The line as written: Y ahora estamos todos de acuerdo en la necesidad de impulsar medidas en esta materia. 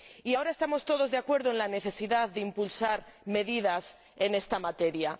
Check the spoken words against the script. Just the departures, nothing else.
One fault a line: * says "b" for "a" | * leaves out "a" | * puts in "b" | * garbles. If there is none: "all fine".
all fine